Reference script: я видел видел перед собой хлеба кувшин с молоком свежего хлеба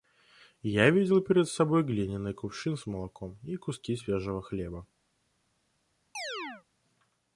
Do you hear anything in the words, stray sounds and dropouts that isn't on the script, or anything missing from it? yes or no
yes